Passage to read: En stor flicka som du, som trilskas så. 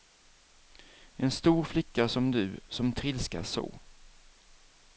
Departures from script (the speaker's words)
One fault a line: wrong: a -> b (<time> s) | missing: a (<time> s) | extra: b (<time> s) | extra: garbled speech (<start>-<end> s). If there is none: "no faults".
no faults